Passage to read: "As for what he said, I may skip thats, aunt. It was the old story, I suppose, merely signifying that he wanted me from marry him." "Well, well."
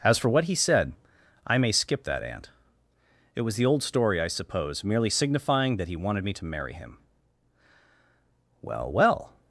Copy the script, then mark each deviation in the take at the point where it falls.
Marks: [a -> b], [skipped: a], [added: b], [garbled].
"As for what he said, I may skip [thats, -> that] aunt. It was the old story, I suppose, merely signifying that he wanted me [from -> to] marry him." "Well, well."